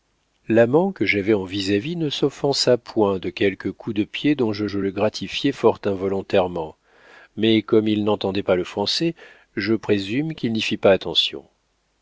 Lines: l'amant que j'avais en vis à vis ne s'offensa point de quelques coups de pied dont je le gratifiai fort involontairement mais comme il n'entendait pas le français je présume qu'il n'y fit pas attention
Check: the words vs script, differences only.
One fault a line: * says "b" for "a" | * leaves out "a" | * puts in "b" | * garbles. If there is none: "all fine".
* puts in "je"